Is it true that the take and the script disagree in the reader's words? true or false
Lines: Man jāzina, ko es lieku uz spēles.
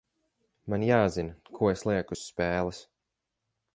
false